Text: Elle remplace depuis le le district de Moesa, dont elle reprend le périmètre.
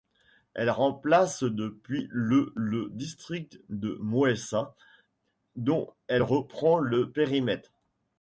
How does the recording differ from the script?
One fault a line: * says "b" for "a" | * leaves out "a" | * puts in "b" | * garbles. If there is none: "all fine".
all fine